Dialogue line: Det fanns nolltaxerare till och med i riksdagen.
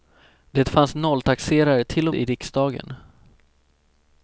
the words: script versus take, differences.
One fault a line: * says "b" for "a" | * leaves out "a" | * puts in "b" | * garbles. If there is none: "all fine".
* leaves out "med"